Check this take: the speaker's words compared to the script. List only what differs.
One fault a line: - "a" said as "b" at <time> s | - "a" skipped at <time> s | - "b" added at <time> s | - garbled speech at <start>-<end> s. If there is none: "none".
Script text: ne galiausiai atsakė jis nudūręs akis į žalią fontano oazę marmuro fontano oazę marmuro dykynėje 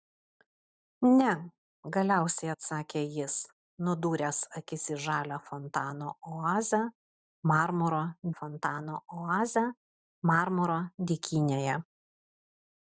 none